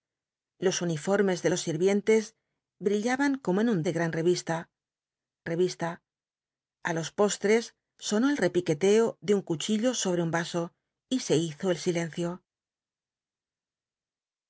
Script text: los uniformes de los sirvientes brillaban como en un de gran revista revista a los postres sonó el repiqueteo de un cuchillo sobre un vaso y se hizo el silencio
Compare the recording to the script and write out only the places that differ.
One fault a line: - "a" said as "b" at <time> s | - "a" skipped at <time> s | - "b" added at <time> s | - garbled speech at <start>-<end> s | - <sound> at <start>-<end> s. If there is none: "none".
none